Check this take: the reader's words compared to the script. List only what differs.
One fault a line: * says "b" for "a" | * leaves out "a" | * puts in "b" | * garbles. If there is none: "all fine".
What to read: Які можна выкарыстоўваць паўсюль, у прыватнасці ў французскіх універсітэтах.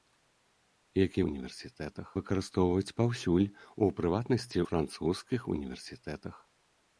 * says "універсітэтах" for "можна"
* leaves out "ў"